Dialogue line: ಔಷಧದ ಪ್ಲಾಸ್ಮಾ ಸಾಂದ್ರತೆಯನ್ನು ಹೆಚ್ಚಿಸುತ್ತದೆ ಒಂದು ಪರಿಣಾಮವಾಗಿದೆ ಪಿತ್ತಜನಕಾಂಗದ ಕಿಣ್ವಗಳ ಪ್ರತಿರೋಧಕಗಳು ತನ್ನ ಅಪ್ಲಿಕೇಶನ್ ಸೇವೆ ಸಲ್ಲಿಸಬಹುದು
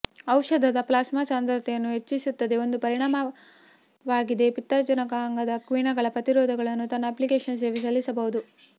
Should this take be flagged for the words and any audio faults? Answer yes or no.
no